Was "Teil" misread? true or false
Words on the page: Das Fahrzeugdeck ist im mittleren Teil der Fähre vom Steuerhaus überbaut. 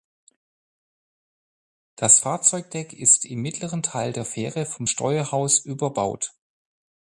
false